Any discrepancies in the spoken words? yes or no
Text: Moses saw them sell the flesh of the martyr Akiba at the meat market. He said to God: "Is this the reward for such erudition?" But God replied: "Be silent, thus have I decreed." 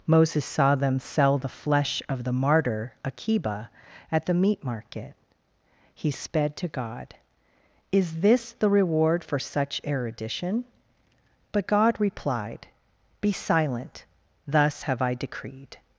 yes